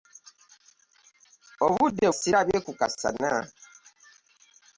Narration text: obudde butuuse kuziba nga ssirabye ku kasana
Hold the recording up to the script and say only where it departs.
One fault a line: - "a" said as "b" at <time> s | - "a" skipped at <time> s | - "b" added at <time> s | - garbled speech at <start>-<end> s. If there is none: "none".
- "butuuse kuziba nga" skipped at 2.0 s